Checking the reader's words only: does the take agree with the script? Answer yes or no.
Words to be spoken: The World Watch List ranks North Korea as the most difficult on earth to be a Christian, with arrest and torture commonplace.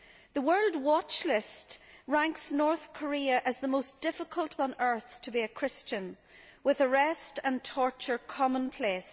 yes